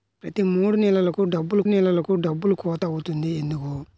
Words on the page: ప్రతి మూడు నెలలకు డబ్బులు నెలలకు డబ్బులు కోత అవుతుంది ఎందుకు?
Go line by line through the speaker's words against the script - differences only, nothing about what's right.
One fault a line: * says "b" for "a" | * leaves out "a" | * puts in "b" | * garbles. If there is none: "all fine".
all fine